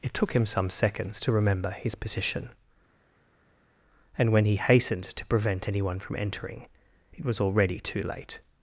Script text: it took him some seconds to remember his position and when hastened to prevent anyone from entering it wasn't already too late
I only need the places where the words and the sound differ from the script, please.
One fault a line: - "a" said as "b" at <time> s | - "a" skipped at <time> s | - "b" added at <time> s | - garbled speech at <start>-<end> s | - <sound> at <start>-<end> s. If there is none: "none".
- "he" added at 4.4 s
- "wasn't" said as "was" at 7.2 s